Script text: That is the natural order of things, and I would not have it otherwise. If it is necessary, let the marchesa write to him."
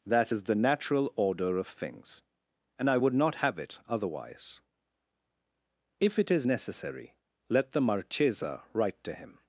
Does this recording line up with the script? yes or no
yes